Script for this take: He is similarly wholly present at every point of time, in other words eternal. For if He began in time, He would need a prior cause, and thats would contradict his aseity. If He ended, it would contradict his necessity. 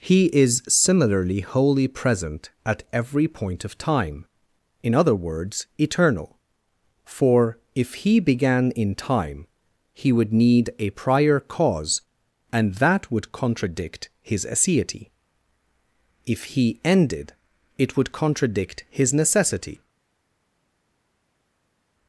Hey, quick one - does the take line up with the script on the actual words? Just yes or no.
no